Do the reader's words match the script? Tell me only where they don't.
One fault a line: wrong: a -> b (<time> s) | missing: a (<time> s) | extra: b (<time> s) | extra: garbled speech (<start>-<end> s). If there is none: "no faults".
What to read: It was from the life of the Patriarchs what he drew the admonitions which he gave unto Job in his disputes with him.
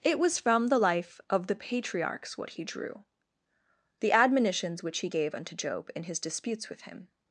no faults